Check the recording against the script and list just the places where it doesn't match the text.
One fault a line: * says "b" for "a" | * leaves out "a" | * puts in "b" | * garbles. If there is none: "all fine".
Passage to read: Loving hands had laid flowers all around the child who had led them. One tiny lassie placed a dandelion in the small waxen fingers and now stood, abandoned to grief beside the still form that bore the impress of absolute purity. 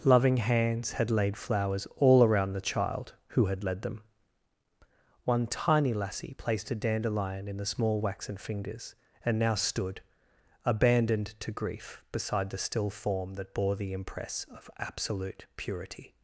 all fine